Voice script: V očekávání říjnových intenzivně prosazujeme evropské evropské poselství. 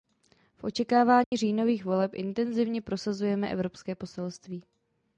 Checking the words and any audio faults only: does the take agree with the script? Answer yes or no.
no